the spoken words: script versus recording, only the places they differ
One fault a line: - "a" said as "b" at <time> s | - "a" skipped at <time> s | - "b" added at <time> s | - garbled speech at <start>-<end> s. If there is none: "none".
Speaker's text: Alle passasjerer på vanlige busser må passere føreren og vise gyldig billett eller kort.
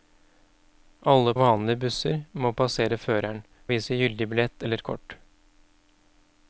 - "passasjerer på" skipped at 1.3 s
- "og" skipped at 3.4 s